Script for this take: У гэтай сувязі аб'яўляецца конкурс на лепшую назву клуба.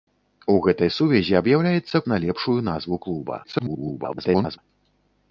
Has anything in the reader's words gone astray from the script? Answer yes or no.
yes